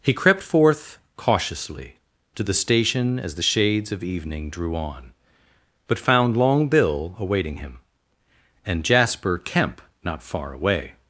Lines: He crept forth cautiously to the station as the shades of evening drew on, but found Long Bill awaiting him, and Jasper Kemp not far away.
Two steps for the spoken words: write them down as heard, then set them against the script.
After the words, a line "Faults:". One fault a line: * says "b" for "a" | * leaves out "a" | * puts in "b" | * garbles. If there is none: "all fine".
He crept forth cautiously to the station as the shades of evening drew on, but found Long Bill awaiting him, and Jasper Kemp not far away.
Faults:
all fine